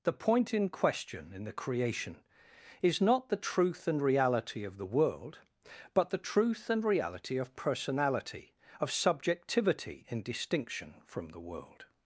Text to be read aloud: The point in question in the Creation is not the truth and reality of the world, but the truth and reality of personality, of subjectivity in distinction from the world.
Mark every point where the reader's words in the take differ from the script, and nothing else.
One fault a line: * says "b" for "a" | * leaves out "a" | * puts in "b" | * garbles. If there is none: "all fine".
all fine